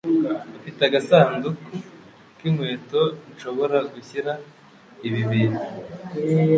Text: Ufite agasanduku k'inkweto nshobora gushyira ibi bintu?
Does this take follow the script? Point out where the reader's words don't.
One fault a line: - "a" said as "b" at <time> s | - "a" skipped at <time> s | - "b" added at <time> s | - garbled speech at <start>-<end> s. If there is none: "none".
none